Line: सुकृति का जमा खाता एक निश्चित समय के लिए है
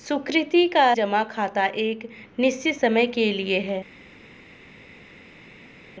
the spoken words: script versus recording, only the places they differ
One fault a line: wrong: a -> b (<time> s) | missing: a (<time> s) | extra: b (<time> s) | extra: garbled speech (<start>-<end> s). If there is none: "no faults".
no faults